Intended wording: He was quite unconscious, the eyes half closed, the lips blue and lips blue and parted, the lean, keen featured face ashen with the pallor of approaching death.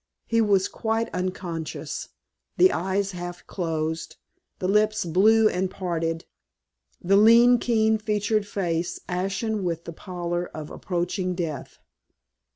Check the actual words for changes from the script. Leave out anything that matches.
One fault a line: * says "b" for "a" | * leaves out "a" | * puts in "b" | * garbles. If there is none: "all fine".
* leaves out "lips blue and"